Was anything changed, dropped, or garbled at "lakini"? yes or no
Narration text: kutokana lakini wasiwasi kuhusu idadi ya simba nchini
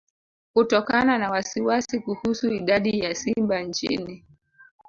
yes